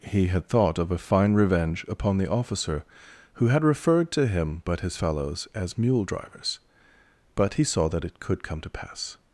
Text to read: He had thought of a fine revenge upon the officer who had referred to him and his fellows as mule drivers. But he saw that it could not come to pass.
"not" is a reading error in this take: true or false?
true